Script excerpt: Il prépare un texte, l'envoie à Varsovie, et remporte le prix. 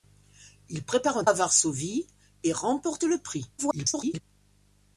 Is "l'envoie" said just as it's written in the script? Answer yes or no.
no